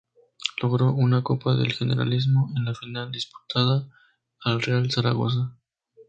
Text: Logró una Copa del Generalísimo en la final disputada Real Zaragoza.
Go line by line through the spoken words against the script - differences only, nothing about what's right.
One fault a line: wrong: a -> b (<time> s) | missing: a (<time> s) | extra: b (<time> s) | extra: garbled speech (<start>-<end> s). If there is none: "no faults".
extra: al (4.4 s)